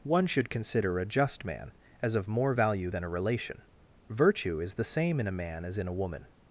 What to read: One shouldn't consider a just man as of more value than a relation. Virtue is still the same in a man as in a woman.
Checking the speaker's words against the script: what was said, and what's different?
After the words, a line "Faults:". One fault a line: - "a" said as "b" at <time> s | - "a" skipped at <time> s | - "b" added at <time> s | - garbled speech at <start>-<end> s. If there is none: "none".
One should consider a just man as of more value than a relation. Virtue is the same in a man as in a woman.
Faults:
- "shouldn't" said as "should" at 0.3 s
- "still" skipped at 4.7 s